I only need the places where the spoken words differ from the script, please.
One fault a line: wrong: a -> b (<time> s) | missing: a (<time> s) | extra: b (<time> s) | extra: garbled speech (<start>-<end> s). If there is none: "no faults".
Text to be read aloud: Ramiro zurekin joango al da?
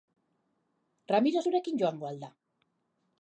no faults